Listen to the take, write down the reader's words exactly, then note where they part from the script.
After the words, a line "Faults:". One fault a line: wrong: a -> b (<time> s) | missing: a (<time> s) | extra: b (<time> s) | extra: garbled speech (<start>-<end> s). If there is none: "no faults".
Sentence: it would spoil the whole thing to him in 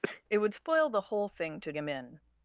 it would spoil the whole thing to him in
Faults:
no faults